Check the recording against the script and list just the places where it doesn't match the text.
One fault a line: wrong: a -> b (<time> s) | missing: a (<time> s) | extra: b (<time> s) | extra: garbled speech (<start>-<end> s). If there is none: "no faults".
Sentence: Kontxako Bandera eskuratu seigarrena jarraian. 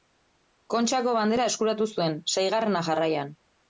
extra: zuen (1.9 s)